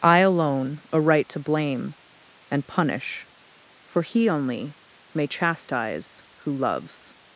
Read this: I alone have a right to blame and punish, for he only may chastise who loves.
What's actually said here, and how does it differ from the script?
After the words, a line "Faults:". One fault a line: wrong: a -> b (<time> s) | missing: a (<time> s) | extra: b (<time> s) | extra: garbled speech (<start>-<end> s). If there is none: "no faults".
I alone a right to blame and punish, for he only may chastise who loves.
Faults:
missing: have (0.8 s)